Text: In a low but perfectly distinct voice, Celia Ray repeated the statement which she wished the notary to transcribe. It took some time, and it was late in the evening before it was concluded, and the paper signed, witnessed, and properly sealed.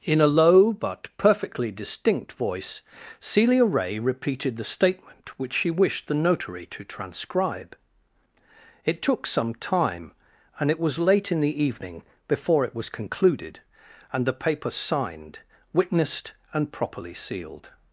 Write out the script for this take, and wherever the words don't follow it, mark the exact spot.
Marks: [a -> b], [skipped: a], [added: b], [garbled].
In a low but perfectly distinct voice, Celia Ray repeated the statement which she wished the notary to transcribe. It took some time, and it was late in the evening before it was concluded, and the paper signed, witnessed, and properly sealed.